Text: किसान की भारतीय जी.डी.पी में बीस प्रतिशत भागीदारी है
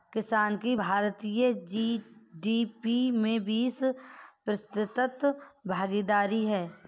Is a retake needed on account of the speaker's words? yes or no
no